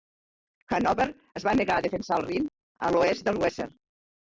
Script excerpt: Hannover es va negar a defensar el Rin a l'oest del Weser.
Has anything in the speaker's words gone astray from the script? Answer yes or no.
no